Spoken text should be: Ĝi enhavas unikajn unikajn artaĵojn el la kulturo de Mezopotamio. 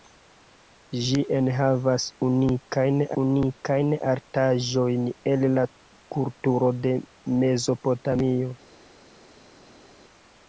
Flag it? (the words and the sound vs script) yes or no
no